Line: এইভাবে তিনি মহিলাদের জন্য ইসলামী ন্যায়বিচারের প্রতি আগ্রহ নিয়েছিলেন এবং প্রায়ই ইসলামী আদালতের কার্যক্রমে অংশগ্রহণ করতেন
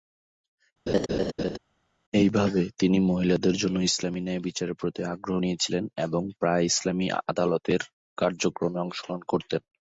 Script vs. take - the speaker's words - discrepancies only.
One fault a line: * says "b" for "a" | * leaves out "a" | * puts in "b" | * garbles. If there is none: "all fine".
all fine